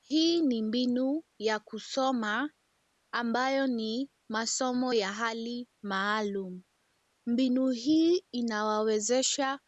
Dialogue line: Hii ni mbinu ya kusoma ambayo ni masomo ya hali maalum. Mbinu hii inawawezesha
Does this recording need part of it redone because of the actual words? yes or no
no